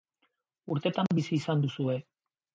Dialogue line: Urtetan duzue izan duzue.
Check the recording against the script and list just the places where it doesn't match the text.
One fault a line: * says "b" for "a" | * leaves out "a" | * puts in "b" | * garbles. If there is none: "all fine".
* says "bizi" for "duzue"